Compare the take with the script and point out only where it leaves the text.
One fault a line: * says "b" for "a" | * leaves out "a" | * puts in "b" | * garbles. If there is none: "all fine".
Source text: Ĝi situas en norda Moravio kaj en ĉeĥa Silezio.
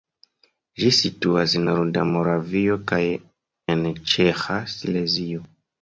all fine